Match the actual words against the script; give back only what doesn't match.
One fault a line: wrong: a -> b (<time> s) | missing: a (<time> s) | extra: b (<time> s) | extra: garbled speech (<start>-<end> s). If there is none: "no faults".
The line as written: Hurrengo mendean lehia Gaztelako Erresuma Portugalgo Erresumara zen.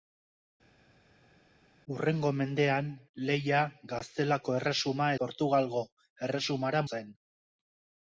no faults